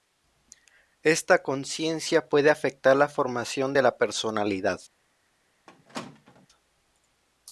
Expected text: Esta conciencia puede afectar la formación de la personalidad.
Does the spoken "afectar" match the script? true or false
true